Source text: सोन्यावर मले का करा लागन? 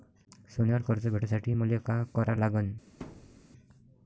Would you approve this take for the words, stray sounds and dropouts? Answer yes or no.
no